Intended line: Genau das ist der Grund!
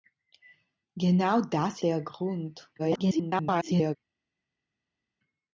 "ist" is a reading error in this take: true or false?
true